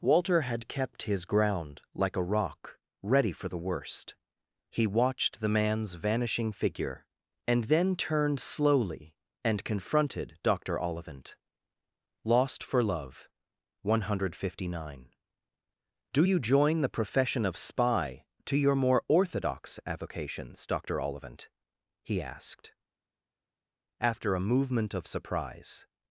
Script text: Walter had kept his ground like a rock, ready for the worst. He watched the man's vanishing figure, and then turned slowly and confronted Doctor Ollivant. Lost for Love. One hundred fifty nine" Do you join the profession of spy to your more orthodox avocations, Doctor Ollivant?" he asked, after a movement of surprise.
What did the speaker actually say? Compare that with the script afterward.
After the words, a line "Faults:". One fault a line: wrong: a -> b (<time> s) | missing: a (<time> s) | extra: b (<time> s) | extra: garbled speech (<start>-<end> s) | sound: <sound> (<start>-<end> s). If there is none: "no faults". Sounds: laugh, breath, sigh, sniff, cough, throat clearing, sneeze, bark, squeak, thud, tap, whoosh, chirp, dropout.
Walter had kept his ground like a rock, ready for the worst. He watched the man's vanishing figure, and then turned slowly and confronted Doctor Ollivant. Lost for Love. One hundred fifty nine" Do you join the profession of spy to your more orthodox avocations, Doctor Ollivant?" he asked, after a movement of surprise.
Faults:
no faults